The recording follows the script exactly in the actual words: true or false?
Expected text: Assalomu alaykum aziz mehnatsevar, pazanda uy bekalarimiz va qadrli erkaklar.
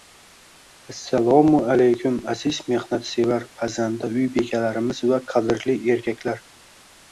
true